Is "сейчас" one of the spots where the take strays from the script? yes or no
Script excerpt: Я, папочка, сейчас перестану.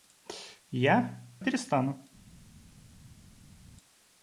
yes